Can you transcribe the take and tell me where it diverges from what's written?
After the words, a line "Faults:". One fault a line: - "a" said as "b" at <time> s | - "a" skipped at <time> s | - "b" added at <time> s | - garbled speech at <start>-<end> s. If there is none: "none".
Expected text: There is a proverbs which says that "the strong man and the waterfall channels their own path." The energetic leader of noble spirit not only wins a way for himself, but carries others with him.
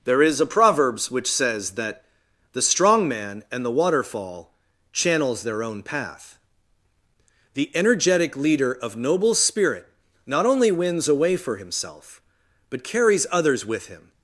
There is a proverbs which says that "the strong man and the waterfall channels their own path." The energetic leader of noble spirit not only wins a way for himself, but carries others with him.
Faults:
none